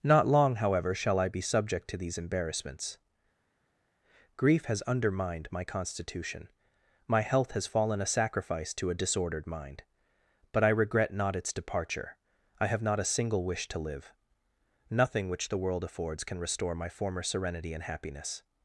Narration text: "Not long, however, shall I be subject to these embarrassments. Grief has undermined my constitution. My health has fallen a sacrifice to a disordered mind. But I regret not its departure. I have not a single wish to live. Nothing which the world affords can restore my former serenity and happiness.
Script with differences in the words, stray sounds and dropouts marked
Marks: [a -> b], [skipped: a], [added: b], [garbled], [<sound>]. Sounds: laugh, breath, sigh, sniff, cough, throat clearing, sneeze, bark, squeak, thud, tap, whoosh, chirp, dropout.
"Not long, however, shall I be subject to these embarrassments. Grief has undermined my constitution. My health has fallen a sacrifice to a disordered mind. But I regret not its departure. I have not a single wish to live. Nothing which the world affords can restore my former serenity and happiness.